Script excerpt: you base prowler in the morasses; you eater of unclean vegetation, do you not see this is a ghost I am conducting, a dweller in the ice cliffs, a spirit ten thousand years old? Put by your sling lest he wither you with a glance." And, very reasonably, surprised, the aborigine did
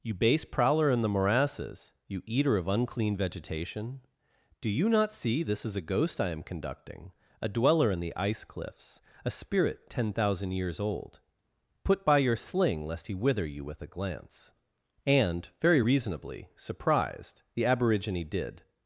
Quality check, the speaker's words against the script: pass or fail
pass